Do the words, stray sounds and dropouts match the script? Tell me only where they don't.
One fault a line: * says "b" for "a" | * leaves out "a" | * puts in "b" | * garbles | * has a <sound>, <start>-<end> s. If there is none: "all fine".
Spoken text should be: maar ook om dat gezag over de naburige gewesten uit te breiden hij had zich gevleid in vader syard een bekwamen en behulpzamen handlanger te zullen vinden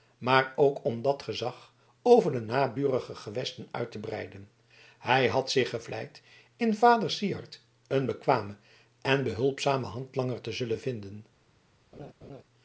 * has a laugh, 11.9-12.4 s